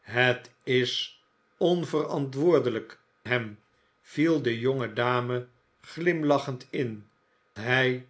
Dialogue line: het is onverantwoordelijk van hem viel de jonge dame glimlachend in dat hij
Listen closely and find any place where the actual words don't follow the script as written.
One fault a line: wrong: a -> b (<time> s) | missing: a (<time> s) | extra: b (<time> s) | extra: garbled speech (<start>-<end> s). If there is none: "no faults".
missing: van (3.0 s)
missing: dat (7.1 s)